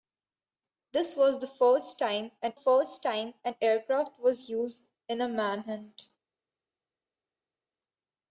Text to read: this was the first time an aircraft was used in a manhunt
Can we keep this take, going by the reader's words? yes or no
no